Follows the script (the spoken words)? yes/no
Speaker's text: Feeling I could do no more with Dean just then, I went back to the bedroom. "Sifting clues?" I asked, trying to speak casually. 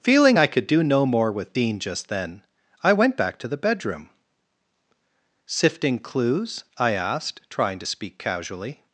yes